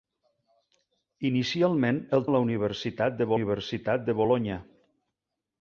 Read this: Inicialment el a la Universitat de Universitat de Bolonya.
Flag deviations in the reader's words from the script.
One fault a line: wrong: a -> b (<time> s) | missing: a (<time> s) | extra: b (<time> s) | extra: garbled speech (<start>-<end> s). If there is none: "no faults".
no faults